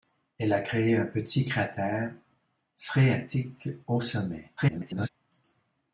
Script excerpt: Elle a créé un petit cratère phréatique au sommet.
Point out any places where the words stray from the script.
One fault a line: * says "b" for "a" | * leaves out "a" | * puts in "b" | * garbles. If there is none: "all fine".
* garbles